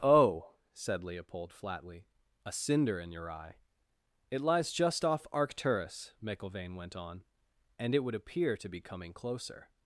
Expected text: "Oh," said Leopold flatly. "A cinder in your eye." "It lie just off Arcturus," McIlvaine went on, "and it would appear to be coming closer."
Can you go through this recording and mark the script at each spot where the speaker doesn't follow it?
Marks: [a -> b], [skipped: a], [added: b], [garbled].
"Oh," said Leopold flatly. "A cinder in your eye." "It [lie -> lies] just off Arcturus," McIlvaine went on, "and it would appear to be coming closer."